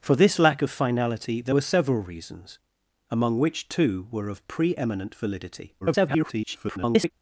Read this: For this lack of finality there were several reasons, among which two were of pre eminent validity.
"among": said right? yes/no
yes